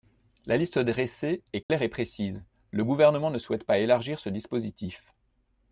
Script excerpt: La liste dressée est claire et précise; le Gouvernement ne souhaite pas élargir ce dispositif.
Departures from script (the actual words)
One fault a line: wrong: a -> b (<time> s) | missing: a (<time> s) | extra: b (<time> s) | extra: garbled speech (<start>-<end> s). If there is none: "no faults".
no faults